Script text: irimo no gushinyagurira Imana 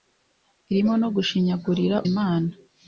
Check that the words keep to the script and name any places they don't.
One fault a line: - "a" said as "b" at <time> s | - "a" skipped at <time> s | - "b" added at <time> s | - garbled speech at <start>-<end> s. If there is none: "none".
none